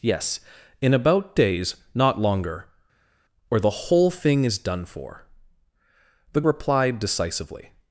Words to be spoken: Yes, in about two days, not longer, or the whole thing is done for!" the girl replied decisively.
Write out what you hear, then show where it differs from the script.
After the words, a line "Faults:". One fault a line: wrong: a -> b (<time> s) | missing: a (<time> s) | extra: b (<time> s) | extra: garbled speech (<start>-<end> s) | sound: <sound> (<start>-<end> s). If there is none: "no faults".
Yes, in about days, not longer, or the whole thing is done for!" the replied decisively.
Faults:
missing: two (1.4 s)
missing: girl (6.4 s)